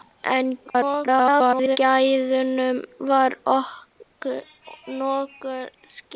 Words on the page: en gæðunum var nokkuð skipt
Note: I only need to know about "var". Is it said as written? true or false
true